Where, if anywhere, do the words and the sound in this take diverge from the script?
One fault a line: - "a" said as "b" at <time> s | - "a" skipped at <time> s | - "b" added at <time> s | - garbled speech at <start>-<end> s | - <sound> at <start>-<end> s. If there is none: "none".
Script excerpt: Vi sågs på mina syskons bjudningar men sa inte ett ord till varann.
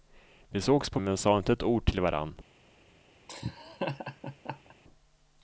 - "mina syskons bjudningar" skipped at 1.0 s
- laugh at 3.3-4.7 s